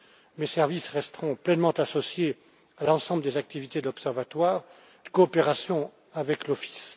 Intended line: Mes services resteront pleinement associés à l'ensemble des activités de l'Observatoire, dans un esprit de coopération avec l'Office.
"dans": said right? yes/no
no